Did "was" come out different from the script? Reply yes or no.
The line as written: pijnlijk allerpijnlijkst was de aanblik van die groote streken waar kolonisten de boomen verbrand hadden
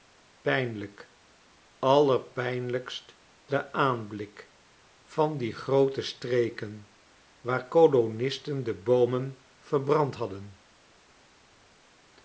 yes